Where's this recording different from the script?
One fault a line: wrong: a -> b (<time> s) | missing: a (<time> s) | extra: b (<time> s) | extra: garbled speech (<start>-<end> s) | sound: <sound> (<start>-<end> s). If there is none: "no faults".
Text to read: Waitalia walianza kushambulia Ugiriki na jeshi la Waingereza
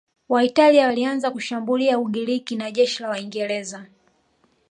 no faults